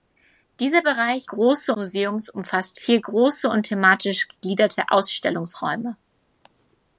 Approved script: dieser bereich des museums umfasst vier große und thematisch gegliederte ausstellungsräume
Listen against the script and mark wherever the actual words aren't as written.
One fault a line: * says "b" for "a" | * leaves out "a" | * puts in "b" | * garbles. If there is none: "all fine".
* says "große" for "des"